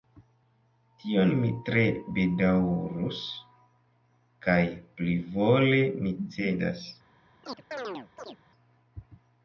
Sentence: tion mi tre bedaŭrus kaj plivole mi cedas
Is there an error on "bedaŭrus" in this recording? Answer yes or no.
no